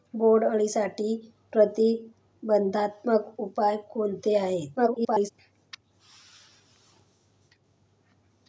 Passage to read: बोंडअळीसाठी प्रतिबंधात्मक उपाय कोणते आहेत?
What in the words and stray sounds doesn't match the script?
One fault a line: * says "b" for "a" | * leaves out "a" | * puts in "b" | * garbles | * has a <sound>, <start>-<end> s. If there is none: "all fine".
* garbles